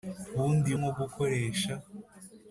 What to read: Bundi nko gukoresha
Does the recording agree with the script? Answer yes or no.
yes